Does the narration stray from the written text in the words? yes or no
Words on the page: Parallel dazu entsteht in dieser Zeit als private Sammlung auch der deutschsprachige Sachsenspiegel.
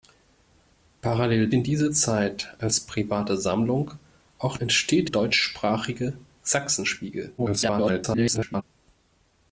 yes